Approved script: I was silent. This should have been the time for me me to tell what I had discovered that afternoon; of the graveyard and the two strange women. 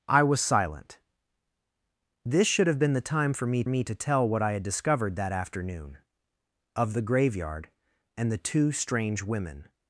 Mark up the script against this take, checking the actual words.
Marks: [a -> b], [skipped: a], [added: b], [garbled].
I was silent. This should have been the time for me me to tell what I had discovered that afternoon; of the graveyard and the two strange women.